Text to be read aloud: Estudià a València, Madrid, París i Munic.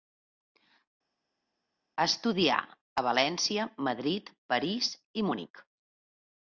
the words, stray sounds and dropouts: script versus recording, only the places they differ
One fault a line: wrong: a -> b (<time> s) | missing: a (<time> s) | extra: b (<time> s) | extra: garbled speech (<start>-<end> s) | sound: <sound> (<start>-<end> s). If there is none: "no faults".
no faults